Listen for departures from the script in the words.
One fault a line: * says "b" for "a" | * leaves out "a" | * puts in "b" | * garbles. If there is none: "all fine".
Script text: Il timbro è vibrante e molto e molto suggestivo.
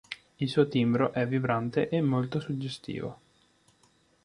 * puts in "suo"
* leaves out "e molto"